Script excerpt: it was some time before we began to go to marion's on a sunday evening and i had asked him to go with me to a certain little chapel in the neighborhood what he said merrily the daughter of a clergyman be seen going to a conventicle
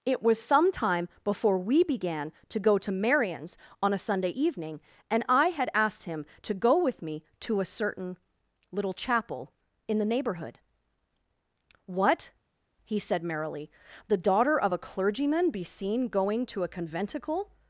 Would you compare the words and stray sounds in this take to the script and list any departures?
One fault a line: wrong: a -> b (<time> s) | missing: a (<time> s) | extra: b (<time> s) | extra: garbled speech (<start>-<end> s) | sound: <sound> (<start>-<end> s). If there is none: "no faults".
no faults